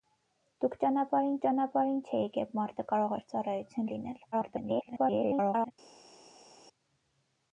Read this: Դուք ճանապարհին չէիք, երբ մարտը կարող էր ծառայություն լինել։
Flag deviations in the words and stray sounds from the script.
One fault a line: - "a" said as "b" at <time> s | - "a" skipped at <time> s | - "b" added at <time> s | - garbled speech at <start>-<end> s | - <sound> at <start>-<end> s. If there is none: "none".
- "ճանապարհին" added at 1.4 s
- garbled speech at 4.3-5.7 s